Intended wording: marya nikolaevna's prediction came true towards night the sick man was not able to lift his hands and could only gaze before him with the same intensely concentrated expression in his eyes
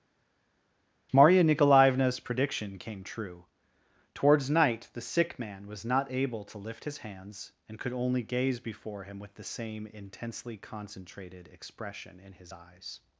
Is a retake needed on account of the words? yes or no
no